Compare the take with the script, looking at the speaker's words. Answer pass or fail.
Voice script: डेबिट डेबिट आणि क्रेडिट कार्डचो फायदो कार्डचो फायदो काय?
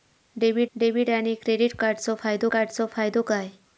pass